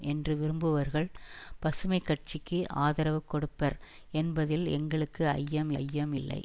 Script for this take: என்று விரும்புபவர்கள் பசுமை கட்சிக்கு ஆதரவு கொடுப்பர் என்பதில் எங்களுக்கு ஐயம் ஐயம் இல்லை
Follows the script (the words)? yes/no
yes